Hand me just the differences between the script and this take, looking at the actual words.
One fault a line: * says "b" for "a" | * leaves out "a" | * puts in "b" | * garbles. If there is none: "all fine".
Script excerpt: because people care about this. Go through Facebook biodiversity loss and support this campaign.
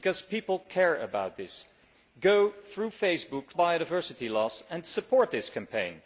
all fine